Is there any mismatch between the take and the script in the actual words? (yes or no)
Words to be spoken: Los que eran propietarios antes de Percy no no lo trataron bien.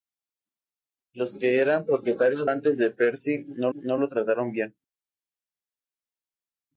no